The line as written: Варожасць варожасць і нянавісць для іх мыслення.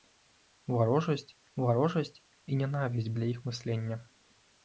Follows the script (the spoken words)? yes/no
yes